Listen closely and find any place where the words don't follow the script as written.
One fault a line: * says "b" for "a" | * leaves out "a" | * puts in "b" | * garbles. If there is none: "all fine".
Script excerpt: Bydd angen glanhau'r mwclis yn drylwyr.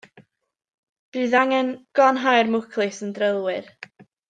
all fine